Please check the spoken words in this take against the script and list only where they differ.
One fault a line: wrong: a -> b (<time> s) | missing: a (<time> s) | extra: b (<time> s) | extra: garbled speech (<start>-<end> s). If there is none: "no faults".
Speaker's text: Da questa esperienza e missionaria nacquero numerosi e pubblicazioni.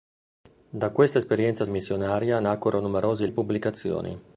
no faults